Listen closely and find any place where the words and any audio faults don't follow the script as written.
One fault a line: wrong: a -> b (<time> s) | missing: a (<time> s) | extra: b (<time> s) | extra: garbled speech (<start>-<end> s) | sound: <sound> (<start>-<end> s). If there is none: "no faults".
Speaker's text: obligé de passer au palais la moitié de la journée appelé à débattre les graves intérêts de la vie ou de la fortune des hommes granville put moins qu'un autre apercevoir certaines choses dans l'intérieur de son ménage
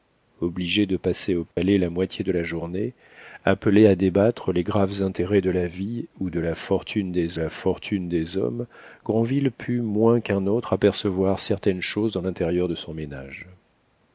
sound: dropout (1.5-1.6 s)
extra: la fortune des (7.3 s)